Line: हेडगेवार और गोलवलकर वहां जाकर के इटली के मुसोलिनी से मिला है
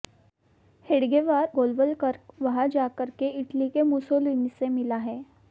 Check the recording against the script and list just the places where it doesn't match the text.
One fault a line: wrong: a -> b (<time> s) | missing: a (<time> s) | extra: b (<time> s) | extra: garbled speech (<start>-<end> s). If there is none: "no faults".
missing: और (1.4 s)